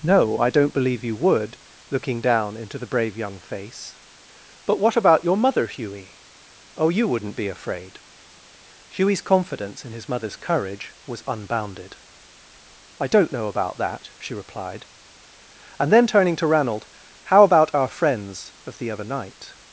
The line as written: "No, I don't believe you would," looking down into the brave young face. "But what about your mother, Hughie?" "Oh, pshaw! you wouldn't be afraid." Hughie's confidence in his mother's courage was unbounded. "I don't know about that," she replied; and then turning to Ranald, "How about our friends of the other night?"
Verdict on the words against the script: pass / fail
fail